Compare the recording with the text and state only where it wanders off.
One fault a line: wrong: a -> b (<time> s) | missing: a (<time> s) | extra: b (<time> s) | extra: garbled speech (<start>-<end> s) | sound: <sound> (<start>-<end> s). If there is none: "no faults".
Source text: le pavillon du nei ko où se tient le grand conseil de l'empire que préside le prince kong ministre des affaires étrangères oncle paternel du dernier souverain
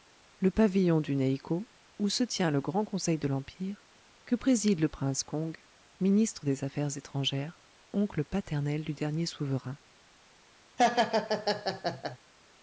sound: laugh (10.8-12.2 s)